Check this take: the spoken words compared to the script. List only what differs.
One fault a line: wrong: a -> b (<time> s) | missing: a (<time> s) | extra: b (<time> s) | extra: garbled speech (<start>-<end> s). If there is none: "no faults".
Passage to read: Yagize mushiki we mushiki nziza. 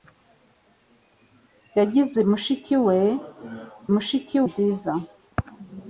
no faults